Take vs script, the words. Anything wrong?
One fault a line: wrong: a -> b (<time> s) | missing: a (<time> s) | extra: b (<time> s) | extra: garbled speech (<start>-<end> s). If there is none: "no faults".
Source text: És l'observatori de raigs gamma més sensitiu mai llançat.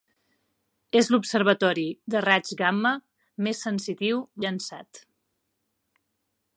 missing: mai (4.2 s)